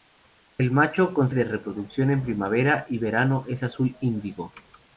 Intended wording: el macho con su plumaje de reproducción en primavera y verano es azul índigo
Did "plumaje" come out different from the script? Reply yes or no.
yes